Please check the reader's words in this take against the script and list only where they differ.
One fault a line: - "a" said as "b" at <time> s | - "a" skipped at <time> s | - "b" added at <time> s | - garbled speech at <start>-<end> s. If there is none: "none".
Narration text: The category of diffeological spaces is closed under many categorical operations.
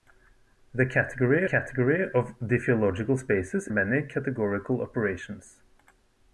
- "category" added at 1.4 s
- "is closed under" skipped at 3.7 s